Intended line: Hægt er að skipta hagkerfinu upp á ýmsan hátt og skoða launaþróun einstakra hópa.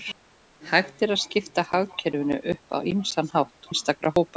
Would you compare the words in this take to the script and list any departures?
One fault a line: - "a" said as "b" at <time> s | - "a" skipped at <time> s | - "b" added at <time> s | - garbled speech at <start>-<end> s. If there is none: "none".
- "og skoða launaþróun" skipped at 3.7 s